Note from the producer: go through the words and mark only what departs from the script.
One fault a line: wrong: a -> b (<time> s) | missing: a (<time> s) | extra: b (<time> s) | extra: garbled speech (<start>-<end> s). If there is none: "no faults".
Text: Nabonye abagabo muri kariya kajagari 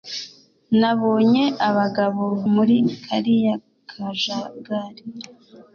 no faults